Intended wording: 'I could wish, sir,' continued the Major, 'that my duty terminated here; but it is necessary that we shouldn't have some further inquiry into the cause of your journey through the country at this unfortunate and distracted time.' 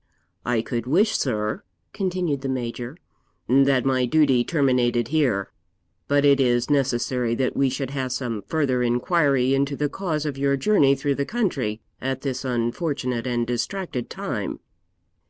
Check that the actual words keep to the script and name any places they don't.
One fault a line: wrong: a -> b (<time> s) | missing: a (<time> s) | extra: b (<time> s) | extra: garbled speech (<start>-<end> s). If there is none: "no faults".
wrong: shouldn't -> should (7.7 s)